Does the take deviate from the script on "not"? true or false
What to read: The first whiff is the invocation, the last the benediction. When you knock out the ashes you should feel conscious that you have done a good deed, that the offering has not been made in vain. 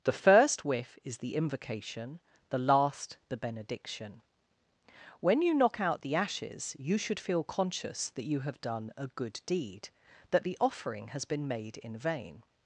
true